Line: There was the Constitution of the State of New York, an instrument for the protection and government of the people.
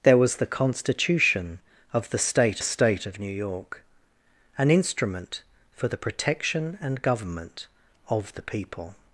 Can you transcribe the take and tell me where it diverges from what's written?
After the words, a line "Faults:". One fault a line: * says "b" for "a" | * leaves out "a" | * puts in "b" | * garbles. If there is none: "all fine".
There was the Constitution of the State State of New York, an instrument for the protection and government of the people.
Faults:
* puts in "State"